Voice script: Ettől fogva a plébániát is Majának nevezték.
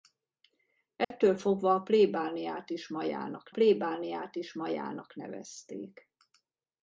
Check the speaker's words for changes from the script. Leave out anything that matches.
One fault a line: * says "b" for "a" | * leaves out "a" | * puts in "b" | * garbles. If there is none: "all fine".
* puts in "plébániát is Majának"